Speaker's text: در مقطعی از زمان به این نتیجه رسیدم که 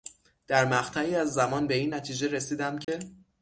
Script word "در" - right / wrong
right